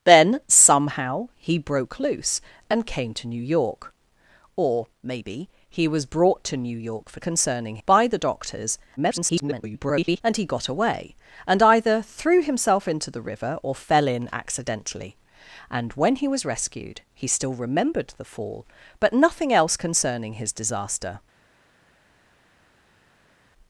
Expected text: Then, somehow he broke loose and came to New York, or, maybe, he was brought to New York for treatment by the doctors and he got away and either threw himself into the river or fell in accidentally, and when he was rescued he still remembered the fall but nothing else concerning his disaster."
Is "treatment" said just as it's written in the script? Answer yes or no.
no